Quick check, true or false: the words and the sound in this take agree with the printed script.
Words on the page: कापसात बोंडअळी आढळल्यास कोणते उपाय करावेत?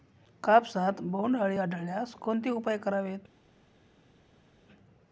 true